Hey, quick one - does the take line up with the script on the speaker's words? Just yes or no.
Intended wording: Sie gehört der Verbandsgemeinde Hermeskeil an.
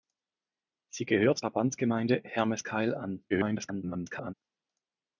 no